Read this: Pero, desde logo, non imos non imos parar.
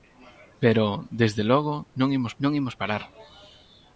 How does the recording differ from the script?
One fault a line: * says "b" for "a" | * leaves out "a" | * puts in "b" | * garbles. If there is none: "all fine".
all fine